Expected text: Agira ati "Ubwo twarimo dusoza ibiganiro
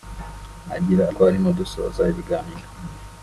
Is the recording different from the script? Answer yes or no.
yes